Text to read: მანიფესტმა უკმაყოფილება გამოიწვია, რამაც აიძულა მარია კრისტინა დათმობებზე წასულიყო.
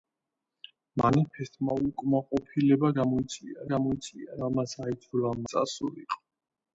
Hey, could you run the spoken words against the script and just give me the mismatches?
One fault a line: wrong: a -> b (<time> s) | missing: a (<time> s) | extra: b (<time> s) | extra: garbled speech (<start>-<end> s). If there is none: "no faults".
extra: გამოიწვია (3.7 s)
missing: მარია კრისტინა დათმობებზე (5.3 s)